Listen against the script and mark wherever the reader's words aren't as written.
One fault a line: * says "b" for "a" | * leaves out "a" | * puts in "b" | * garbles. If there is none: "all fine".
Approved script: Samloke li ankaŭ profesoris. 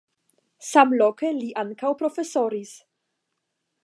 all fine